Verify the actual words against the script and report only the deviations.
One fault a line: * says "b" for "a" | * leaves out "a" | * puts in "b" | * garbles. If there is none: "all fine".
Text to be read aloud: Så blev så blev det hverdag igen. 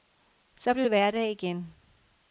* leaves out "så blev"